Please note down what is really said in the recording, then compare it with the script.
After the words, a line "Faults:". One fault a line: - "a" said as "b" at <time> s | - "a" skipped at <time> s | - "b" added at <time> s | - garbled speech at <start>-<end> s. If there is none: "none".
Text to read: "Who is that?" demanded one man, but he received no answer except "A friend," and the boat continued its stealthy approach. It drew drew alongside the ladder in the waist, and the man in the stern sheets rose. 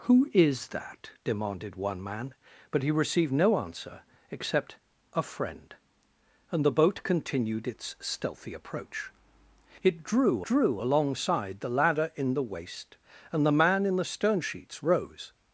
"Who is that?" demanded one man, but he received no answer except "A friend," and the boat continued its stealthy approach. It drew drew alongside the ladder in the waist, and the man in the stern sheets rose.
Faults:
none